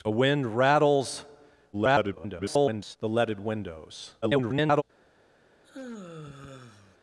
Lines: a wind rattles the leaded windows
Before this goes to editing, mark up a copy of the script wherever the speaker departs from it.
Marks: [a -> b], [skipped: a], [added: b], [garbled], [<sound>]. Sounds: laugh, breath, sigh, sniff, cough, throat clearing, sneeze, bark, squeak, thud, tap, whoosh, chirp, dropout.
a wind rattles [garbled] the leaded windows [garbled] [sigh]